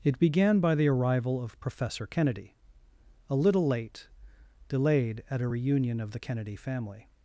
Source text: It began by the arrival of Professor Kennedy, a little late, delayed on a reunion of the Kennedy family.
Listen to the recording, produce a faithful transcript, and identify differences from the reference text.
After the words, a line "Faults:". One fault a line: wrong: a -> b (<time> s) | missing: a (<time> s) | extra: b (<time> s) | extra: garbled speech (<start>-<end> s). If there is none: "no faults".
It began by the arrival of Professor Kennedy, a little late, delayed at a reunion of the Kennedy family.
Faults:
wrong: on -> at (5.3 s)